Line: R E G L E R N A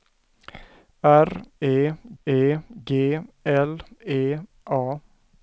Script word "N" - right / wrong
wrong